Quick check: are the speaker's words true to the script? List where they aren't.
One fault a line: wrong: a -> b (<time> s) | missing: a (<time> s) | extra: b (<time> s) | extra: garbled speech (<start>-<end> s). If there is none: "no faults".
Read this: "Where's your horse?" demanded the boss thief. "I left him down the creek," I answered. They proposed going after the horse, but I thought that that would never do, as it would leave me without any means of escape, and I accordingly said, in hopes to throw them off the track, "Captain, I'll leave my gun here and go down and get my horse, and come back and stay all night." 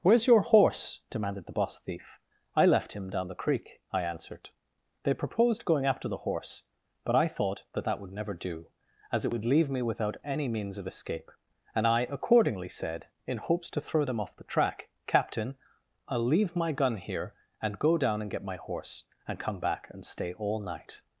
no faults